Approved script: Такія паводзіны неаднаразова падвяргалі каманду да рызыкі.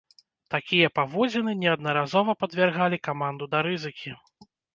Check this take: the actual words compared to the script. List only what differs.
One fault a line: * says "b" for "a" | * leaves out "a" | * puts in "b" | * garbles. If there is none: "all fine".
all fine